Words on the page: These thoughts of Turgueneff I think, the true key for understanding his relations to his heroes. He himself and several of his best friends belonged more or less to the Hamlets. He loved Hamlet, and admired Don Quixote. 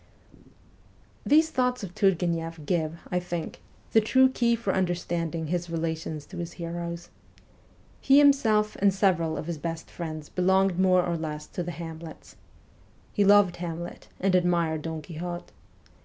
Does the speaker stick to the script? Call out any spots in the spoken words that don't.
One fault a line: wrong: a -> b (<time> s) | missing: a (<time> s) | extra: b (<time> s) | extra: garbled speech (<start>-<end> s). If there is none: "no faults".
extra: give (2.6 s)